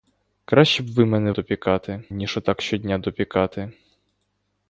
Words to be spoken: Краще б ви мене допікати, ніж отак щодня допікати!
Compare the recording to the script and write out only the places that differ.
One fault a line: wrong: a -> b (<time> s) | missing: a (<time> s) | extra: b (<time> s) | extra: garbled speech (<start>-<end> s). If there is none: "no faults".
no faults